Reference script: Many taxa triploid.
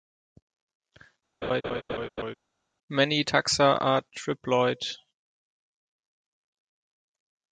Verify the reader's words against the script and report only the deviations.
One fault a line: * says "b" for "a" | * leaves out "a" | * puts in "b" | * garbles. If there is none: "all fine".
* puts in "are"